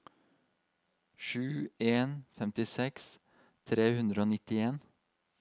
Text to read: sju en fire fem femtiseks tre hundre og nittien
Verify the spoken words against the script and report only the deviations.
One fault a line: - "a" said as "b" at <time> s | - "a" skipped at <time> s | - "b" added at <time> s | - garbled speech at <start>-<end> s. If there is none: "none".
- "fire fem" skipped at 2.1 s